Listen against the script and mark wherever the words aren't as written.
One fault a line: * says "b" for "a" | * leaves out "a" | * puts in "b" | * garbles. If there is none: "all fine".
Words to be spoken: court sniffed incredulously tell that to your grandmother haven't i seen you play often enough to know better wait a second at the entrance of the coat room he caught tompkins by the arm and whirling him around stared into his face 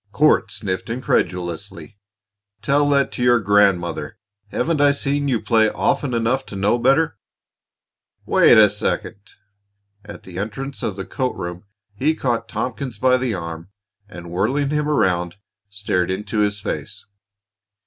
all fine